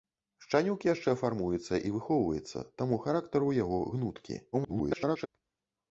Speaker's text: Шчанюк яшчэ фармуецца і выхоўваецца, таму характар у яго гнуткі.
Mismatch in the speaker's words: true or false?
true